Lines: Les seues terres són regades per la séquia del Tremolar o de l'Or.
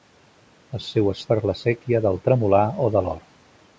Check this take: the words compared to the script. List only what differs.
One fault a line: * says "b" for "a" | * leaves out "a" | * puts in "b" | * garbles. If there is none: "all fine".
* leaves out "terres són regades"